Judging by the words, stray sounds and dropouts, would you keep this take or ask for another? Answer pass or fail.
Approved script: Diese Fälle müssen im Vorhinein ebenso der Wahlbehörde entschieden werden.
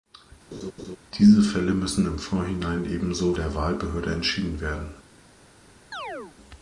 fail